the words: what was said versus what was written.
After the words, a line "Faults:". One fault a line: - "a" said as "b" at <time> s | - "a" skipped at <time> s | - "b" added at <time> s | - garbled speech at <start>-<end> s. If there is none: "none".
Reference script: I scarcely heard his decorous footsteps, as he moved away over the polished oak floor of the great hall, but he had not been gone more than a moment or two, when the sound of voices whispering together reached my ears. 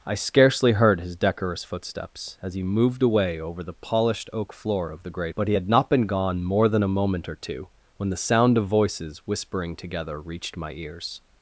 I scarcely heard his decorous footsteps, as he moved away over the polished oak floor of the great but he had not been gone more than a moment or two, when the sound of voices whispering together reached my ears.
Faults:
- "hall" skipped at 5.3 s